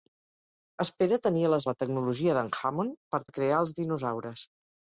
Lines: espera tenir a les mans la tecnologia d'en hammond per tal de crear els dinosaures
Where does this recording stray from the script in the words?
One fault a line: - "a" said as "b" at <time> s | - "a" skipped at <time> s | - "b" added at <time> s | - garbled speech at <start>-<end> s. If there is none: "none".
- "mans" skipped at 1.7 s
- "tal" skipped at 3.2 s